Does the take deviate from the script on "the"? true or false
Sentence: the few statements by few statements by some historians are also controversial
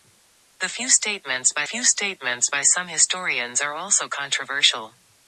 false